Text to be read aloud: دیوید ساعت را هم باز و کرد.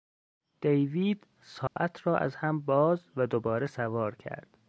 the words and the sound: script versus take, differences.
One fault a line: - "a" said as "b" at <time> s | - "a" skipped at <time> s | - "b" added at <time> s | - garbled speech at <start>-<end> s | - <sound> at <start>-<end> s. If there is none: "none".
- dropout at 1.7-1.8 s
- "از" added at 2.2 s
- "دوباره سوار" added at 3.3 s